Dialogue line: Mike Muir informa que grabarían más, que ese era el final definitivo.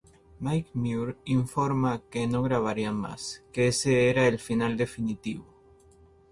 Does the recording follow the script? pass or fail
fail